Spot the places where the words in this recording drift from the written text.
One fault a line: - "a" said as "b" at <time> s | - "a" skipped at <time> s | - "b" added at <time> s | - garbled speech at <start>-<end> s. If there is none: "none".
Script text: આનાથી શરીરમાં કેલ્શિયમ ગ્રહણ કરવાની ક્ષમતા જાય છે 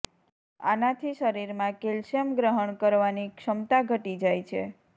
- "ઘટી" added at 3.9 s